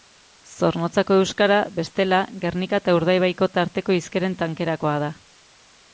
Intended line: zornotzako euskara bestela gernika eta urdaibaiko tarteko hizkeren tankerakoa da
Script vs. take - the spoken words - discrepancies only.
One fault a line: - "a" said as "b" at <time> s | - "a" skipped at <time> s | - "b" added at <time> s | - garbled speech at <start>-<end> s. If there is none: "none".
none